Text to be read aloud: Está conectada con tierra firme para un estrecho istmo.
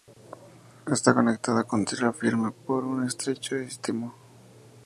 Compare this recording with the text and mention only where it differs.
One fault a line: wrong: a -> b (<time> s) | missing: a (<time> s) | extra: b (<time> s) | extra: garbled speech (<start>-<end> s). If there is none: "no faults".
wrong: para -> por (2.6 s)